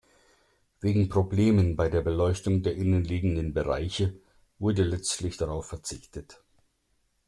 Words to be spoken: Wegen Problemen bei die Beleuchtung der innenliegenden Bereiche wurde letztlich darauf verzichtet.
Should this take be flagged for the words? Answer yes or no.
yes